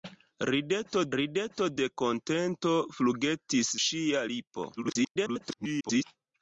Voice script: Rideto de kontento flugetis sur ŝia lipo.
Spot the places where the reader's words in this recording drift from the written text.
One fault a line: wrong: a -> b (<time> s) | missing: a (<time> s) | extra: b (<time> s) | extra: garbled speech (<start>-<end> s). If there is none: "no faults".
extra: rideto (1.1 s)
missing: sur (3.7 s)
extra: garbled speech (4.8-6.0 s)